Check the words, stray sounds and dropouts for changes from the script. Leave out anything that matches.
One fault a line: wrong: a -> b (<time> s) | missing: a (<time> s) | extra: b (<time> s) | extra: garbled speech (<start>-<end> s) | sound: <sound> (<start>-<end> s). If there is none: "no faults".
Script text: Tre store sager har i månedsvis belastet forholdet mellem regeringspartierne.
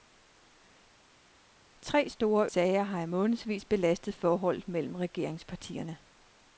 no faults